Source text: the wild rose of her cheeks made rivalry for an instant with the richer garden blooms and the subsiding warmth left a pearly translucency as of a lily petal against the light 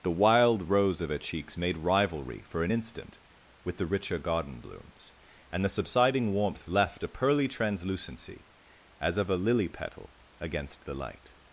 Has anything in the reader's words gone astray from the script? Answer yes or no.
no